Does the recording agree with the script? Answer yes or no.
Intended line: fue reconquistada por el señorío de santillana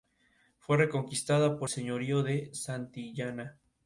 no